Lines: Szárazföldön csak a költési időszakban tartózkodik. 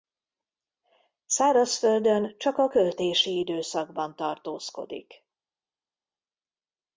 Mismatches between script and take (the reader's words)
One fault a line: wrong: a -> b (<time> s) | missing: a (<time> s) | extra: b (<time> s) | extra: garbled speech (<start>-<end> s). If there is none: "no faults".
no faults